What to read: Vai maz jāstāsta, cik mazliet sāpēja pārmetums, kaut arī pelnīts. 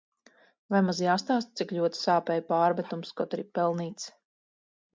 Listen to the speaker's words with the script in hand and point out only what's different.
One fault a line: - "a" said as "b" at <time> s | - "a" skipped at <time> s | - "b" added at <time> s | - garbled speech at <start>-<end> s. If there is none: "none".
- "mazliet" said as "ļoti" at 1.8 s